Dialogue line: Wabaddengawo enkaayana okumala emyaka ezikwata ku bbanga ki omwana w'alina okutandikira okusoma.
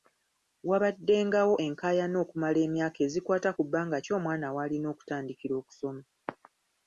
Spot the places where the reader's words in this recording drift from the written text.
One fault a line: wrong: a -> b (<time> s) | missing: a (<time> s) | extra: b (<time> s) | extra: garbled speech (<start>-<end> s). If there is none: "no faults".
no faults